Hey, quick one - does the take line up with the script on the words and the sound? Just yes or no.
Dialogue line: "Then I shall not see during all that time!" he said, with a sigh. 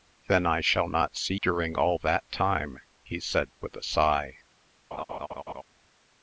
no